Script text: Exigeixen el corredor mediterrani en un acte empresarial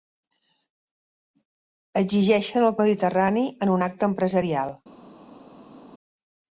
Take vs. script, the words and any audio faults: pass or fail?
fail